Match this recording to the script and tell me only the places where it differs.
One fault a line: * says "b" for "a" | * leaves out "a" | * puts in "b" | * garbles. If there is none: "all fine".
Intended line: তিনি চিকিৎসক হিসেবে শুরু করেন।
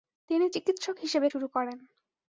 all fine